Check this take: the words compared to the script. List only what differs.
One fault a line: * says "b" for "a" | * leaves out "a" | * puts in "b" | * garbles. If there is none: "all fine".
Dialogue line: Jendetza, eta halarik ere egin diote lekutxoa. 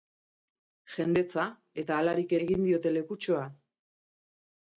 * leaves out "ere"